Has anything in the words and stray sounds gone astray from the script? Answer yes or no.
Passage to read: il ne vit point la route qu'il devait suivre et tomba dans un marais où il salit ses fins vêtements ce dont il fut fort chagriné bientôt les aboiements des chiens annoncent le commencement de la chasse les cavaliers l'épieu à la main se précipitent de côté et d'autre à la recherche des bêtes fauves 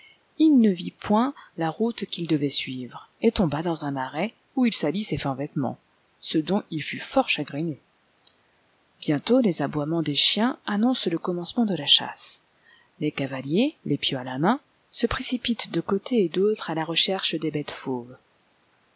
no